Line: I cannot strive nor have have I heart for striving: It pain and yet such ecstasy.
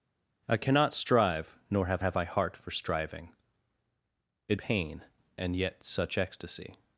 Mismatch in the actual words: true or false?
false